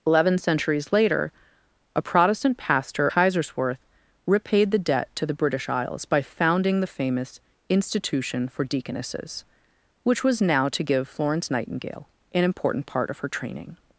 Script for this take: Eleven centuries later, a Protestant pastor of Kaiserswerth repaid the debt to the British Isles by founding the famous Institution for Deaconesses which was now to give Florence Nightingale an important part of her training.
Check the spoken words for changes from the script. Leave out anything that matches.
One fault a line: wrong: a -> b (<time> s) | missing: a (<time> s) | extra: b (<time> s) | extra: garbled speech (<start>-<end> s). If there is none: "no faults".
missing: of (3.1 s)